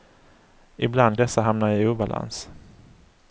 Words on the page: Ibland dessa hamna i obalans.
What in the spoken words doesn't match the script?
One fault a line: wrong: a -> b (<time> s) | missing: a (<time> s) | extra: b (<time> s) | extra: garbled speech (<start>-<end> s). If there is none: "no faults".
no faults